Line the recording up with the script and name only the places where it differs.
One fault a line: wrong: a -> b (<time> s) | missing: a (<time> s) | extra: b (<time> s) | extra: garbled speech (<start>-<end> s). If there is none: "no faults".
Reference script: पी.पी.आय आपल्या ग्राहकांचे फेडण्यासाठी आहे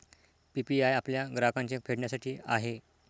no faults